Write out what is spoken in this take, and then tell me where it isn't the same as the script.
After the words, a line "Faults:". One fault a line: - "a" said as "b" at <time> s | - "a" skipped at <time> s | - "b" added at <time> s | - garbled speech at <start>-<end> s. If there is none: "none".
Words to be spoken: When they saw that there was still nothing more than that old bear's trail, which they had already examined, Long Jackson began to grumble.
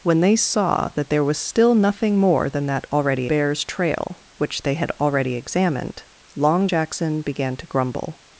When they saw that there was still nothing more than that already bear's trail, which they had already examined, Long Jackson began to grumble.
Faults:
- "old" said as "already" at 2.9 s